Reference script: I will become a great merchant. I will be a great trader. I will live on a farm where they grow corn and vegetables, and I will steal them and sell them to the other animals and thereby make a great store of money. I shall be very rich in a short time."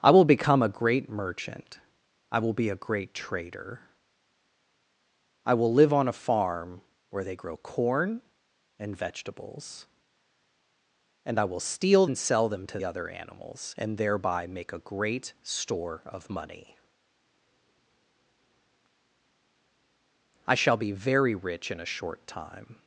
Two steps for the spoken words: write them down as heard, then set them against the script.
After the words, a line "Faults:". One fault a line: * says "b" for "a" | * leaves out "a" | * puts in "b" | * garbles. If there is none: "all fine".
I will become a great merchant. I will be a great trader. I will live on a farm where they grow corn and vegetables, and I will steal and sell them to other animals and thereby make a great store of money. I shall be very rich in a short time."
Faults:
* leaves out "them"
* leaves out "the"